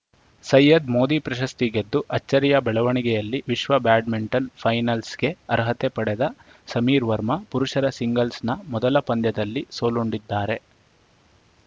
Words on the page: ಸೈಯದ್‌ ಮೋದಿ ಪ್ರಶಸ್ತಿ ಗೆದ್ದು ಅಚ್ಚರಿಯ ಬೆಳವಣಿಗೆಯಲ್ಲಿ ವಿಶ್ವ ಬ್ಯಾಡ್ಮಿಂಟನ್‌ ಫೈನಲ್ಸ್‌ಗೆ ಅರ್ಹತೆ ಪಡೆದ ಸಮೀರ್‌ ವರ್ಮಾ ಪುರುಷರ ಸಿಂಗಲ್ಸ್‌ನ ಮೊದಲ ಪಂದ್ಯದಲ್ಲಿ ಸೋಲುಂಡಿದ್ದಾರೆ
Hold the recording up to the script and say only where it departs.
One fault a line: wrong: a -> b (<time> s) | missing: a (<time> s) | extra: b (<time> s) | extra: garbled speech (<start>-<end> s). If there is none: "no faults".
no faults